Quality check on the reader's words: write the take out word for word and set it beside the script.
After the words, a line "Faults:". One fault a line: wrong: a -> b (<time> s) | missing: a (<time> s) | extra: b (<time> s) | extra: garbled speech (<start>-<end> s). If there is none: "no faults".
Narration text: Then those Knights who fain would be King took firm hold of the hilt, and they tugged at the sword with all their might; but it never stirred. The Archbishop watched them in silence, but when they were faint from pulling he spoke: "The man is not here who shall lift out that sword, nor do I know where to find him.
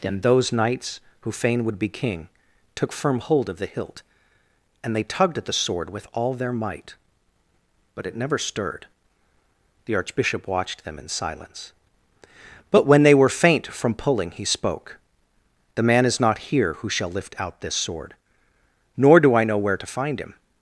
Then those Knights who fain would be King took firm hold of the hilt, and they tugged at the sword with all their might; but it never stirred. The Archbishop watched them in silence, but when they were faint from pulling he spoke: "The man is not here who shall lift out this sword, nor do I know where to find him.
Faults:
wrong: that -> this (17.6 s)